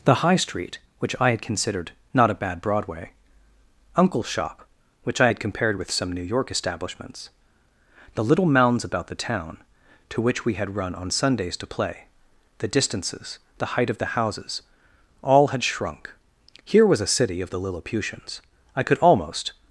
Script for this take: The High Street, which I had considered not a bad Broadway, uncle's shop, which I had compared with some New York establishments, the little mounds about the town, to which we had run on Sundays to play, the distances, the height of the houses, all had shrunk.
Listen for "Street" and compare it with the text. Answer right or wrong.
right